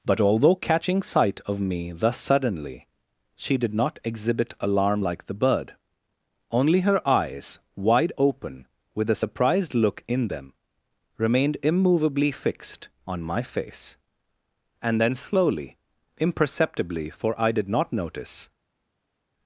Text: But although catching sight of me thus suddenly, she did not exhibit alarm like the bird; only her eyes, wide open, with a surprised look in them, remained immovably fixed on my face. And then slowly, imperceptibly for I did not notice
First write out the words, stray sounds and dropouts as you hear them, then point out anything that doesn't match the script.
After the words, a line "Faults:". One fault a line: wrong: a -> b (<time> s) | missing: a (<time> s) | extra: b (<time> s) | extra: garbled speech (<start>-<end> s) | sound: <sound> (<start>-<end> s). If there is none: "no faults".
But although catching sight of me thus suddenly, she did not exhibit alarm like the bird; only her eyes, wide open, with a surprised look in them, remained immovably fixed on my face. And then slowly, imperceptibly for I did not notice
Faults:
no faults